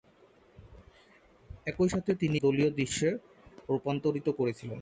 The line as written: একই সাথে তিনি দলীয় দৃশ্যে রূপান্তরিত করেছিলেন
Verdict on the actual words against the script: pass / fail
pass